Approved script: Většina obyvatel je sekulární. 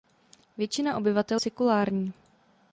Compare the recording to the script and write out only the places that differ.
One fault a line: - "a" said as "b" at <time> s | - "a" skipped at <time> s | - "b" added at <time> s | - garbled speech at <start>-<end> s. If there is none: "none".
- "je" skipped at 1.4 s